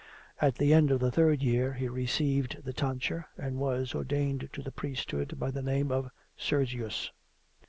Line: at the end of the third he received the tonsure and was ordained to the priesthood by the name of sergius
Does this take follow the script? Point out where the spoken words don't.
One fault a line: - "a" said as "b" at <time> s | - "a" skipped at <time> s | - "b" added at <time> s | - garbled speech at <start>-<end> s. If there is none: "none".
- "year" added at 1.4 s